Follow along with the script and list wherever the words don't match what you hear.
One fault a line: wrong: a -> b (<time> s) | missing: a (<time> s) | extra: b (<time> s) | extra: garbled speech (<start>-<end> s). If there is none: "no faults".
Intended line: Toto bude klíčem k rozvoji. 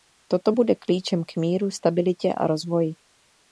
extra: míru stabilitě a (1.4 s)